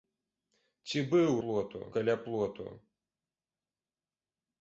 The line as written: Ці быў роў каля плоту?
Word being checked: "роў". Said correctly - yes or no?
no